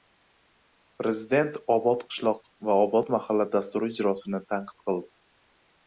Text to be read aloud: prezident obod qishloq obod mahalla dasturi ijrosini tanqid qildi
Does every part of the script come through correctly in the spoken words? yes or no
no